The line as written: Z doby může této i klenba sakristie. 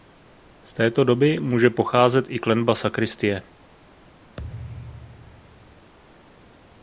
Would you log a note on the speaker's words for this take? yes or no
yes